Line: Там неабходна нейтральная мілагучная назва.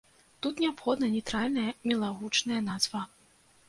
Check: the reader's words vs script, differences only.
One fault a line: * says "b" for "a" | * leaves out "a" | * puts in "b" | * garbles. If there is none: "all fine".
* says "Тут" for "Там"